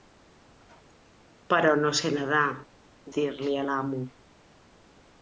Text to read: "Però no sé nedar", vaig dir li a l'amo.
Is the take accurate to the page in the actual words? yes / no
no